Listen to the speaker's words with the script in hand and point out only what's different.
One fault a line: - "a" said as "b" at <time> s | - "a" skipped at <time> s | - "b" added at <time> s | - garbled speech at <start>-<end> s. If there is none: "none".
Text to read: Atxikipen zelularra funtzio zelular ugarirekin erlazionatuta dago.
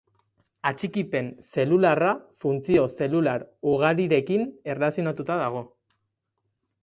none